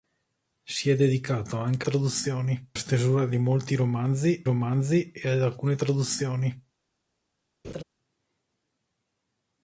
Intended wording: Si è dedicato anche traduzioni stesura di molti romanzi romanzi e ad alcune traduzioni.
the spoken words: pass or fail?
pass